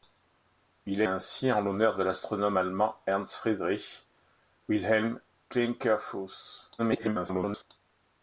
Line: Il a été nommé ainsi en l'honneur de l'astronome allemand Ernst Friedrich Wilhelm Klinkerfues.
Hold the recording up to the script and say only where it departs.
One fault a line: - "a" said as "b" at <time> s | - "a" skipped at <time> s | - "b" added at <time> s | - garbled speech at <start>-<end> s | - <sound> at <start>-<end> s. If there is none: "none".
- "été nommé" skipped at 1.1 s
- garbled speech at 6.8-7.6 s